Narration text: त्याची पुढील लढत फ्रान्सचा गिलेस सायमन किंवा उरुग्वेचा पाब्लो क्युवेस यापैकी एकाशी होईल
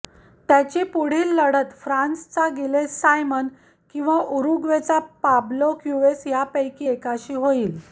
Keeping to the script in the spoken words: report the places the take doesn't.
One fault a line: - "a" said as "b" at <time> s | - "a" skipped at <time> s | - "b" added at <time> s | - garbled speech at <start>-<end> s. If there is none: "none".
none